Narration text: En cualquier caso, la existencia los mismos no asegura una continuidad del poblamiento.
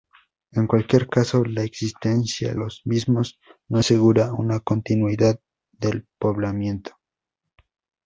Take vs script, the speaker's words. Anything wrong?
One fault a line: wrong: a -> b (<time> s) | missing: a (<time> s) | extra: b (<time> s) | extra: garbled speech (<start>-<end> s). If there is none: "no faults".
no faults